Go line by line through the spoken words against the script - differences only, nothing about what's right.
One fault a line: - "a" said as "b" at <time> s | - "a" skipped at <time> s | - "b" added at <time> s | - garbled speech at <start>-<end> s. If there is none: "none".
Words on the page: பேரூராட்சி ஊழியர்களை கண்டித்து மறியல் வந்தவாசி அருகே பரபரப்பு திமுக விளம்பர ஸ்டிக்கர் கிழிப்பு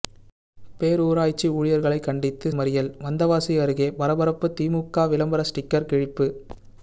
none